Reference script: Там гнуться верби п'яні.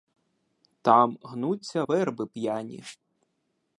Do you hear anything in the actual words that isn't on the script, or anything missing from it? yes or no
no